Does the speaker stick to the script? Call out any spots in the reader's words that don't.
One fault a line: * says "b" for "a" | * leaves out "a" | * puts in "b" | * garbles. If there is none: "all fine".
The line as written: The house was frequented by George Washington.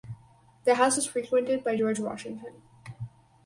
all fine